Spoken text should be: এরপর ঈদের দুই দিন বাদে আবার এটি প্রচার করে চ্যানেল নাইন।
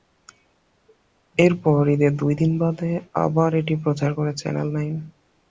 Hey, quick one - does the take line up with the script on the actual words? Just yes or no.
yes